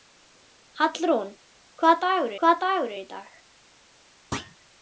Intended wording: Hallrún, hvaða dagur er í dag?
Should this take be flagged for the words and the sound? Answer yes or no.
yes